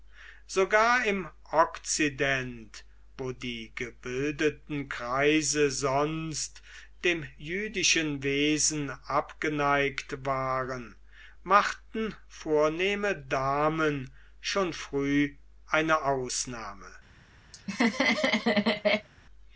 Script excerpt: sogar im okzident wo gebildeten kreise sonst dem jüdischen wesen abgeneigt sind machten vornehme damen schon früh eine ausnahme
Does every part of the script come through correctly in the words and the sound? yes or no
no